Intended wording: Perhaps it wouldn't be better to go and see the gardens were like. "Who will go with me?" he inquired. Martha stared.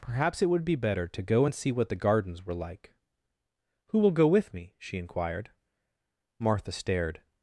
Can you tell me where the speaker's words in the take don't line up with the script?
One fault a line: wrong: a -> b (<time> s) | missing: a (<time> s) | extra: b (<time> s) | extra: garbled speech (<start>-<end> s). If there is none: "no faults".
wrong: wouldn't -> would (0.5 s)
extra: what (1.7 s)
wrong: he -> she (4.8 s)